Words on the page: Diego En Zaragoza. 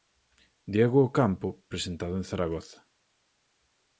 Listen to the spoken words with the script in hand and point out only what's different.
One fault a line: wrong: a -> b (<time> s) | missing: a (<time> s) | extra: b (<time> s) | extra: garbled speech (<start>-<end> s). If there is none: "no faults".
extra: Ocampo presentado (1.0 s)